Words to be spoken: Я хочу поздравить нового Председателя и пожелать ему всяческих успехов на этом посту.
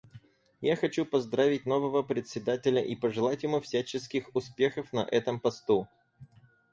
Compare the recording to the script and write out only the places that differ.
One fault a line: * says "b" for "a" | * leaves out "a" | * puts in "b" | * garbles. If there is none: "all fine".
all fine